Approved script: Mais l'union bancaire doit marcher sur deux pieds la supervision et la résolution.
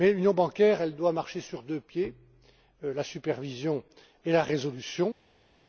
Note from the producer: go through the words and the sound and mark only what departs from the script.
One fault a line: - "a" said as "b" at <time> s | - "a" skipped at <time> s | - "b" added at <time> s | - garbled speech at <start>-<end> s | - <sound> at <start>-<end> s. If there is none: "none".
none